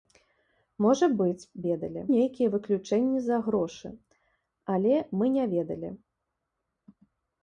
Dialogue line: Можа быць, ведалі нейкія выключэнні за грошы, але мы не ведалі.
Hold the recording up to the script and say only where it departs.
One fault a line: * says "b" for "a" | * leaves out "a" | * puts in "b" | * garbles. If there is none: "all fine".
all fine